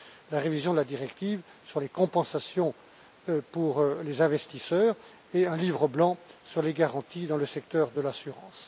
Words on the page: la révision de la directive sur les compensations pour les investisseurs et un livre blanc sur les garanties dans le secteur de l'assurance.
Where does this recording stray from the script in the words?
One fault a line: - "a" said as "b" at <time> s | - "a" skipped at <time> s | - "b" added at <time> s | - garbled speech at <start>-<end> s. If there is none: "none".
none